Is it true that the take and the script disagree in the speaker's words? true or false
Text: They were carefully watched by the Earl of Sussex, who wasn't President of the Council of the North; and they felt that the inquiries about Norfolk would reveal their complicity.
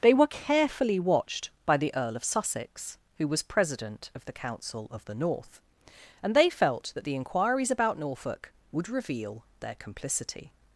true